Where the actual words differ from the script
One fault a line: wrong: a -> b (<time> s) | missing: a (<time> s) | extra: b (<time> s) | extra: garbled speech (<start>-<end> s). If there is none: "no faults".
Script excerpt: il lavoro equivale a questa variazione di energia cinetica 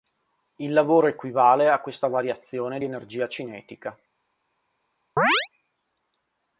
no faults